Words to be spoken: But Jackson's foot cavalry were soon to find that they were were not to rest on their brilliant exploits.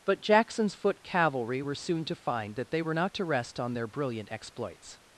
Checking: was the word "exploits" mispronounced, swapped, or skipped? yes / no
no